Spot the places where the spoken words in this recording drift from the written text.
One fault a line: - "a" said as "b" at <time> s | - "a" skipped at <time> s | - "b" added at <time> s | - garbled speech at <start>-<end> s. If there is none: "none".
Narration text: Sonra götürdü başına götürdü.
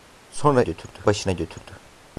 none